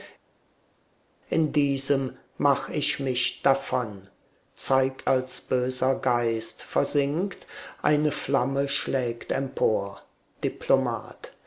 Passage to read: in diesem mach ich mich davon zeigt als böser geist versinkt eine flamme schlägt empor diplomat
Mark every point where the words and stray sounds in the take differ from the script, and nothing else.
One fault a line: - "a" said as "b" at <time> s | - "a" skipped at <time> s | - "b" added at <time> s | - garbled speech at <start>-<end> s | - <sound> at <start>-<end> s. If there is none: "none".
none